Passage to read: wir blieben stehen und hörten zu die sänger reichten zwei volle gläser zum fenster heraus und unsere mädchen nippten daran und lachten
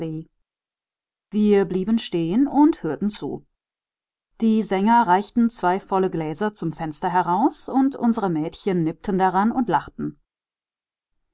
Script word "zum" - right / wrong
right